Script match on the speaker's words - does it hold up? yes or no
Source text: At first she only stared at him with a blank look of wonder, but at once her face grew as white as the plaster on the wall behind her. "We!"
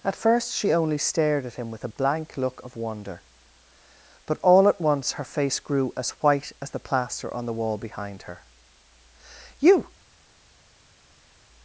no